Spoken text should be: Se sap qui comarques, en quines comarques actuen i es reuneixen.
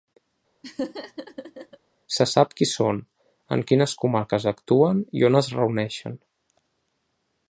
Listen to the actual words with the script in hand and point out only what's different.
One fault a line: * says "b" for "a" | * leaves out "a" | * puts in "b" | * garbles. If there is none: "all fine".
* says "són" for "comarques"
* puts in "on"